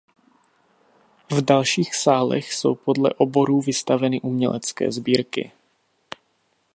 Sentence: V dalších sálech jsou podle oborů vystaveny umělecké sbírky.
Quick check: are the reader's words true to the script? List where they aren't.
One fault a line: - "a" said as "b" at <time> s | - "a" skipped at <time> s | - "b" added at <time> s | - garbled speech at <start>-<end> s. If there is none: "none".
none